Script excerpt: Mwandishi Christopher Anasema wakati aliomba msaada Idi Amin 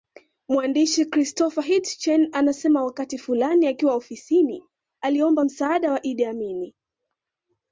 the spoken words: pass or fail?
fail